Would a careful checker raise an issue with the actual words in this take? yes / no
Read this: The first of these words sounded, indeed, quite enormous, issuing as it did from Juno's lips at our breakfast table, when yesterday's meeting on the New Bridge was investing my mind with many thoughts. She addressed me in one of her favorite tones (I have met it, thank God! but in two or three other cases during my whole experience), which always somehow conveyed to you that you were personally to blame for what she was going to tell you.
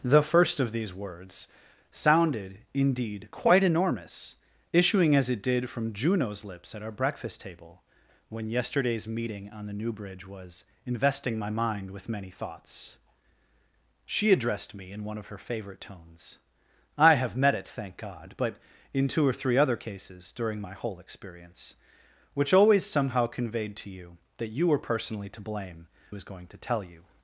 yes